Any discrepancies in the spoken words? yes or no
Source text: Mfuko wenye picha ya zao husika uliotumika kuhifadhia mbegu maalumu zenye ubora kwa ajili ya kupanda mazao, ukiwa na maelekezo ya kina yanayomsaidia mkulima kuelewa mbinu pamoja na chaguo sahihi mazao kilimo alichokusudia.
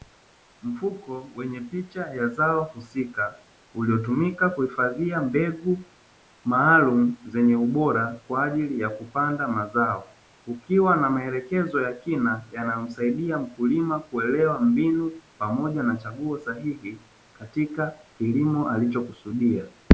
yes